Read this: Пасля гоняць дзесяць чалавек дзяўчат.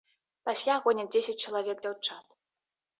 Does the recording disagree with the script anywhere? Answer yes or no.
no